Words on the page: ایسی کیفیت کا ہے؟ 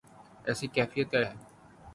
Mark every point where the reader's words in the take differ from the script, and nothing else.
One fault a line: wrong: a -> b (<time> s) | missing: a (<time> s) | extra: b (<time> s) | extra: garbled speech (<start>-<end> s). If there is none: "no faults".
no faults